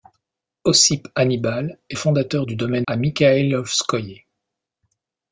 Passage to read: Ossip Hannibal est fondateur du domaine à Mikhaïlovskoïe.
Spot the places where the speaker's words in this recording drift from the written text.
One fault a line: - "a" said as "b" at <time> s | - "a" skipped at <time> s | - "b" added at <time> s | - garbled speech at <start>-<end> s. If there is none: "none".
none